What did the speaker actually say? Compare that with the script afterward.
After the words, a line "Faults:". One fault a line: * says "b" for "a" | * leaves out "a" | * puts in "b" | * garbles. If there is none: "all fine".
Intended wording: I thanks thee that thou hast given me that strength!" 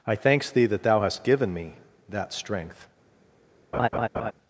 I thanks thee that thou hast given me that strength!"
Faults:
all fine